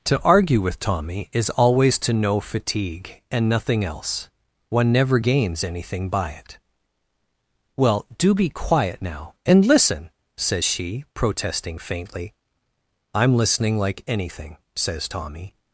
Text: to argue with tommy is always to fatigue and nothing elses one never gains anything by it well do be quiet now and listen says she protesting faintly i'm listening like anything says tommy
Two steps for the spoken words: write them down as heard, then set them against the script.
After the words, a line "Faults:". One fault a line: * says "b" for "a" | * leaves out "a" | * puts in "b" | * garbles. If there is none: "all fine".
to argue with tommy is always to know fatigue and nothing else one never gains anything by it well do be quiet now and listen says she protesting faintly i'm listening like anything says tommy
Faults:
* puts in "know"
* says "else" for "elses"